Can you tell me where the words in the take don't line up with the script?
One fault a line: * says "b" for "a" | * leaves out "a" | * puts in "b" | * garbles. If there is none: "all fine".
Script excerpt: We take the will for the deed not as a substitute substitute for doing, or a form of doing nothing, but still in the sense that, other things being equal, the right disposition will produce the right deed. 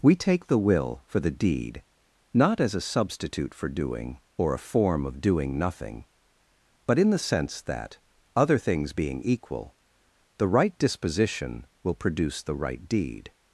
* leaves out "substitute"
* leaves out "still"